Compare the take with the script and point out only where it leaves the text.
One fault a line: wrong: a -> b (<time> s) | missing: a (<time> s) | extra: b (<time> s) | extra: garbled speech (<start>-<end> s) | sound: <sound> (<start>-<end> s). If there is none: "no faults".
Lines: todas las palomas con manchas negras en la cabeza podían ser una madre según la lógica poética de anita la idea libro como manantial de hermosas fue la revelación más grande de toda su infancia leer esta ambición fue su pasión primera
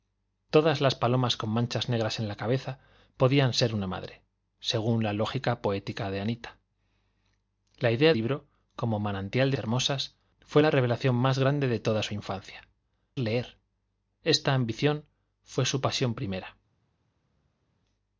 no faults